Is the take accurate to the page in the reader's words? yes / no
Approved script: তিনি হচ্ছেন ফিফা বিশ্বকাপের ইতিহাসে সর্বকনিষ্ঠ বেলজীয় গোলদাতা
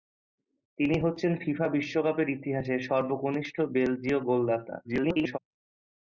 no